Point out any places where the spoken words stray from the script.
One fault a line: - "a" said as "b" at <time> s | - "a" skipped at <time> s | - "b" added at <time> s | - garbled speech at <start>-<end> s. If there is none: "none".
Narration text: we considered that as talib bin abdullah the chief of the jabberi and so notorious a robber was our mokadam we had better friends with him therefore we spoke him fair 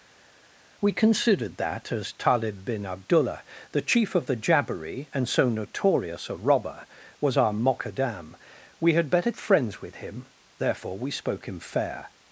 none